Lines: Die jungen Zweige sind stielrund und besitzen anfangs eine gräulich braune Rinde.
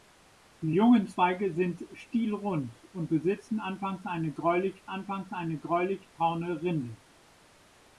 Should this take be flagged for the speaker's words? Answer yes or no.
yes